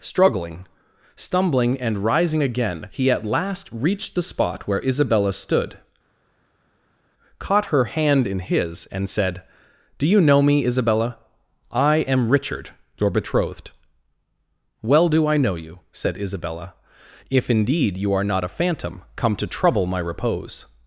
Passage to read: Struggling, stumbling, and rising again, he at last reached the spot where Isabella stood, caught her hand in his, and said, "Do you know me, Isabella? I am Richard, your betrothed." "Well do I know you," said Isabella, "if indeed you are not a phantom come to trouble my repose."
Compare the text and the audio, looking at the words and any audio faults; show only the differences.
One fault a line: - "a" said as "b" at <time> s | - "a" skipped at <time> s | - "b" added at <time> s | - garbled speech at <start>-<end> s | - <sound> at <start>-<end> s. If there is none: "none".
none